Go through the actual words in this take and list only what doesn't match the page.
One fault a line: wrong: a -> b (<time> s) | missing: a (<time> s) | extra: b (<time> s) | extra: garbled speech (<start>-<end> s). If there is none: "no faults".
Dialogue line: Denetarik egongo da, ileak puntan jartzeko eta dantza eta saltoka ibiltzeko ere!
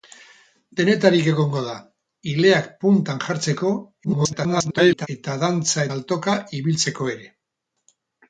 extra: garbled speech (4.0-5.1 s)
missing: eta (5.8 s)